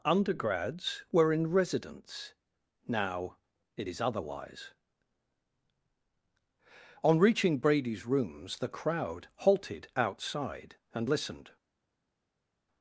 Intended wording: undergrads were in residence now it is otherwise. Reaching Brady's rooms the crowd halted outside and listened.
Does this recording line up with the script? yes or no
no